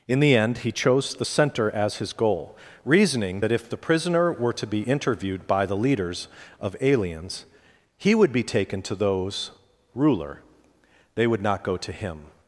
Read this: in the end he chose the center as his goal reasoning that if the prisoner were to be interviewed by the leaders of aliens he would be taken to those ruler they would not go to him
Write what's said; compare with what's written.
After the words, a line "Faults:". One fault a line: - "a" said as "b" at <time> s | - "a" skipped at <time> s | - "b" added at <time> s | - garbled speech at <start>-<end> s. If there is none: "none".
in the end he chose the center as his goal reasoning that if the prisoner were to be interviewed by the leaders of aliens he would be taken to those ruler they would not go to him
Faults:
none